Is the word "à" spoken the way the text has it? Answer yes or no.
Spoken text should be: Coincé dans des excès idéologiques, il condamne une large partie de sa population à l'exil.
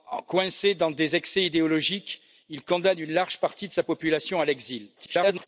yes